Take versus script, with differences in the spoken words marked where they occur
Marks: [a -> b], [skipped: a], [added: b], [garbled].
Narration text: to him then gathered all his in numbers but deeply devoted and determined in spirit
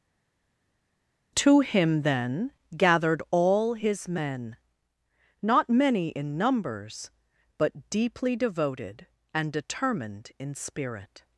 to him then gathered all his [added: men not many] in numbers but deeply devoted and determined in spirit